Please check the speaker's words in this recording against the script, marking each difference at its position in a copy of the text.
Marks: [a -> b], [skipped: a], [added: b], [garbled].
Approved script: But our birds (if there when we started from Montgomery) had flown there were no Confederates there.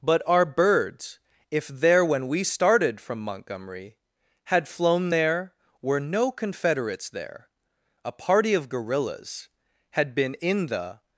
But our birds (if there when we started from Montgomery) had flown there were no Confederates there. [added: A party of guerrillas had been in the]